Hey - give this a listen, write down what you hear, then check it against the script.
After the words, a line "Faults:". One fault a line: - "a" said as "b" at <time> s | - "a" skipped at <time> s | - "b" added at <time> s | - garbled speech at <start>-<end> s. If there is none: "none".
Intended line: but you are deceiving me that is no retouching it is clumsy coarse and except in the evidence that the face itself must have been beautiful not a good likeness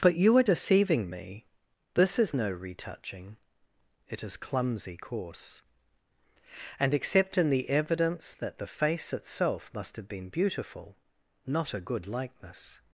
but you are deceiving me this is no retouching it is clumsy coarse and except in the evidence that the face itself must have been beautiful not a good likeness
Faults:
- "that" said as "this" at 1.9 s